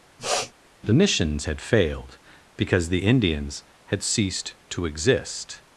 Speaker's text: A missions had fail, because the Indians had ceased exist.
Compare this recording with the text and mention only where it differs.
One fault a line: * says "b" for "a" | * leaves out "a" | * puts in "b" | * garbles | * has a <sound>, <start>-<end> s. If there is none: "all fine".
* has a sniff, 0.2-0.5 s
* says "The" for "A"
* says "failed" for "fail"
* puts in "to"